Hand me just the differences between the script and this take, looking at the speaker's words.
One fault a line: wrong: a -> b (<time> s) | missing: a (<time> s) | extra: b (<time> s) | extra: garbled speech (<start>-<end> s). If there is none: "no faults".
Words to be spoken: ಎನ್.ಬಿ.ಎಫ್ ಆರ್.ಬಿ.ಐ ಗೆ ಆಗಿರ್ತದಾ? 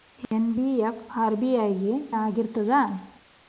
no faults